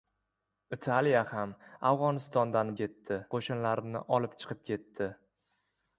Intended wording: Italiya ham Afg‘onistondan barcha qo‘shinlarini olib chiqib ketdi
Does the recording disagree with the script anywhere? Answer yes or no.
yes